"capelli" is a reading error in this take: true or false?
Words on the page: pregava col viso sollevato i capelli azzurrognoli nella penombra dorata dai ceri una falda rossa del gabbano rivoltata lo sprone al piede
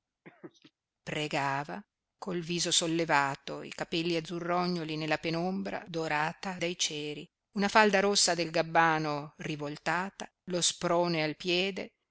false